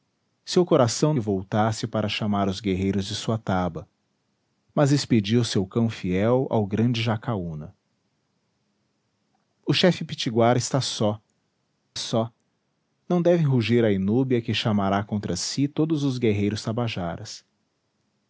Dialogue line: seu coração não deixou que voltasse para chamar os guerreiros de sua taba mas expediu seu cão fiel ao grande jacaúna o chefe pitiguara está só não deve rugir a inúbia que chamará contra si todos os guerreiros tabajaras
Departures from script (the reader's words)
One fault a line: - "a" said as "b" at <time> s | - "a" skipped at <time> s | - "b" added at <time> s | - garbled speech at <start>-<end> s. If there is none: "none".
- "não deixou que" skipped at 1.1 s
- "só" added at 12.0 s